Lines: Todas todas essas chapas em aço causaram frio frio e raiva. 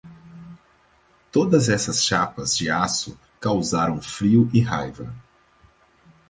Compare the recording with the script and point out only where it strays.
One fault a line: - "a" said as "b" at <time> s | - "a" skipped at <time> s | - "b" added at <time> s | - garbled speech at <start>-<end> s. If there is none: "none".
- "todas" skipped at 1.7 s
- "em" said as "de" at 2.6 s
- "frio" skipped at 4.5 s